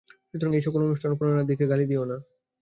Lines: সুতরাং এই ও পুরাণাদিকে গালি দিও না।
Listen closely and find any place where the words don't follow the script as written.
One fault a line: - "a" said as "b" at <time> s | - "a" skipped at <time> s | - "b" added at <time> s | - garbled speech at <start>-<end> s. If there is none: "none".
- "সকল অনুষ্ঠান" added at 0.7 s